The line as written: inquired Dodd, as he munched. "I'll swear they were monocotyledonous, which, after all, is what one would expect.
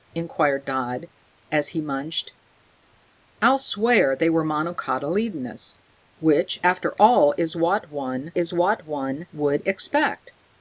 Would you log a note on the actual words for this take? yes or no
yes